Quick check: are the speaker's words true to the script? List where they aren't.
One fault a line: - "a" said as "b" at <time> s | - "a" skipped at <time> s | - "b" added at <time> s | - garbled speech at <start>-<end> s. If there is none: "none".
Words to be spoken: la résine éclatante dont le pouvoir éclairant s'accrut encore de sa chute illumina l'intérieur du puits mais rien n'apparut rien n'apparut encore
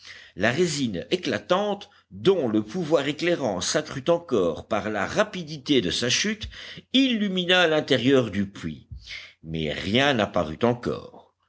- "par la rapidité" added at 4.7 s
- "rien n'apparut" skipped at 10.6 s